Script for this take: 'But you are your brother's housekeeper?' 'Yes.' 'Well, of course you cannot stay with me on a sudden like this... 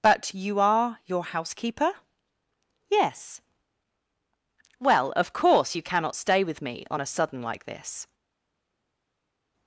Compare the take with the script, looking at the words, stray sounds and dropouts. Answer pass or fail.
fail